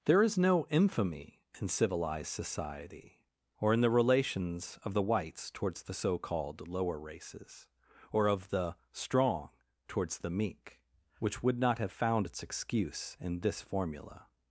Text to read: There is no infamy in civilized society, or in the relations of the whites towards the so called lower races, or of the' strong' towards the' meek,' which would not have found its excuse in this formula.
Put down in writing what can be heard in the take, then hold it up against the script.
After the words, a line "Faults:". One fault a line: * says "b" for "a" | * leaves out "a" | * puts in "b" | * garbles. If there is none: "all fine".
There is no infamy in civilized society, or in the relations of the whites towards the so called lower races, or of the' strong' towards the' meek,' which would not have found its excuse in this formula.
Faults:
all fine